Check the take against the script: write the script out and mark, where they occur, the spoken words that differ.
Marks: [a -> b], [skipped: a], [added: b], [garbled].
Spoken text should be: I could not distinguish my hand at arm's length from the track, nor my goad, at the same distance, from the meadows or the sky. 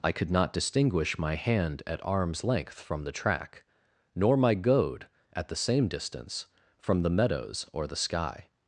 I could not distinguish my hand at arm's length from the track, nor my goad, at the same distance, from the meadows or the sky.